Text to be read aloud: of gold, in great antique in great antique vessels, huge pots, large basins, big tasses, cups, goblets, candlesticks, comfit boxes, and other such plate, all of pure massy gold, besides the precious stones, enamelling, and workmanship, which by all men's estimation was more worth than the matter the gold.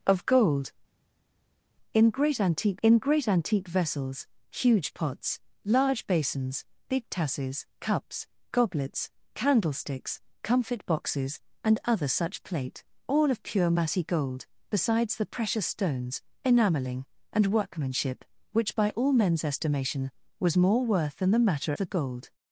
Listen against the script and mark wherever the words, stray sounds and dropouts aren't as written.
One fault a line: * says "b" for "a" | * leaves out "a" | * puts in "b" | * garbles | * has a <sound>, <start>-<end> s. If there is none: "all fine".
all fine